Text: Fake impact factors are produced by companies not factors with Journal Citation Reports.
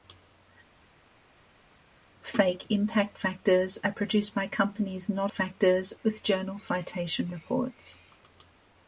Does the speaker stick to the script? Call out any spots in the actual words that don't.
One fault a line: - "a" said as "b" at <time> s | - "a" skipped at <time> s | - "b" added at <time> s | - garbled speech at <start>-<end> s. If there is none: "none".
none